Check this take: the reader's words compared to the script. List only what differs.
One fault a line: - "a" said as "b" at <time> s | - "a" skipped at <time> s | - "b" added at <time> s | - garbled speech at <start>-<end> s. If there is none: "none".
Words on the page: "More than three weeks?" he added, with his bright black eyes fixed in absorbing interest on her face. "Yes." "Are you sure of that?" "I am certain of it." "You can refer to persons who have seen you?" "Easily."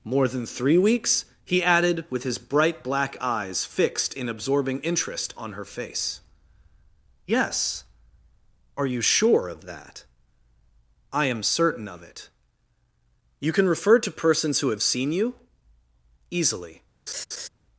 none